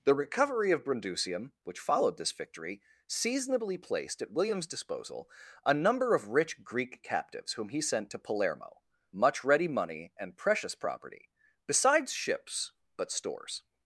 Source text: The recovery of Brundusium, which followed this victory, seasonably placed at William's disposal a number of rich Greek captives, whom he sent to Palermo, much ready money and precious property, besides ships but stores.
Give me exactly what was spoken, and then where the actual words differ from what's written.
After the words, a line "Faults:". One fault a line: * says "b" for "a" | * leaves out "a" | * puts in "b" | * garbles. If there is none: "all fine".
The recovery of Brundusium, which followed this victory, seasonably placed at William's disposal a number of rich Greek captives, whom he sent to Palermo, much ready money and precious property, besides ships but stores.
Faults:
all fine